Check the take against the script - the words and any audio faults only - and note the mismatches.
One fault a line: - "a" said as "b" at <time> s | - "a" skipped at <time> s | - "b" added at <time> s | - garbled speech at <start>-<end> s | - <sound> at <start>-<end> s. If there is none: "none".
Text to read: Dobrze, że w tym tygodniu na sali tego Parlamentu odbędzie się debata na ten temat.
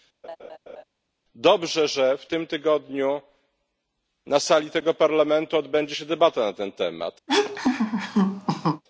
- laugh at 0.2-0.8 s
- laugh at 7.3-8.8 s